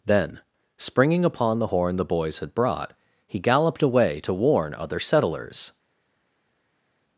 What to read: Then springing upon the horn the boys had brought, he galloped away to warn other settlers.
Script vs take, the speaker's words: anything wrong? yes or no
no